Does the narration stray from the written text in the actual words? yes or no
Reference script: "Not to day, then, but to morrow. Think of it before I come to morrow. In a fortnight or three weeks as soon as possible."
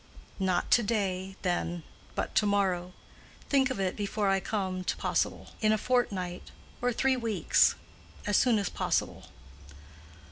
yes